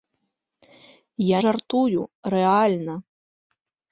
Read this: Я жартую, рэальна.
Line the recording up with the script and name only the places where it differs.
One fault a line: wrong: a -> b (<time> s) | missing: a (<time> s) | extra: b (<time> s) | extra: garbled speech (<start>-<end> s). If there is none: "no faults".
no faults